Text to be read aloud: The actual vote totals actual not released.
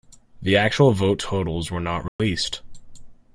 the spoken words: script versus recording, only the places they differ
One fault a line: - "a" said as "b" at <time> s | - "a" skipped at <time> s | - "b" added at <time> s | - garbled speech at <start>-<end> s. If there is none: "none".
- "actual" said as "were" at 1.7 s